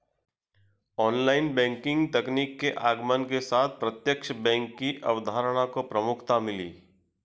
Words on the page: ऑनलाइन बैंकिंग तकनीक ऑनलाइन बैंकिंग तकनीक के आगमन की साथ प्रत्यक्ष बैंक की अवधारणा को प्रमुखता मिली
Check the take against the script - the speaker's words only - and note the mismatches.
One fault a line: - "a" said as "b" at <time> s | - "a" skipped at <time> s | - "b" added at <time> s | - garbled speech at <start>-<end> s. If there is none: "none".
- "ऑनलाइन बैंकिंग तकनीक" skipped at 2.6 s
- "की" said as "के" at 3.2 s